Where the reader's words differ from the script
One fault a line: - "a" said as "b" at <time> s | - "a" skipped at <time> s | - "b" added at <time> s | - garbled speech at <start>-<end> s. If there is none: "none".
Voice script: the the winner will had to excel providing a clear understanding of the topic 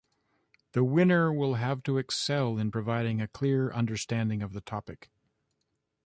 - "the" skipped at 0.8 s
- "had" said as "have" at 1.6 s
- "in" added at 2.6 s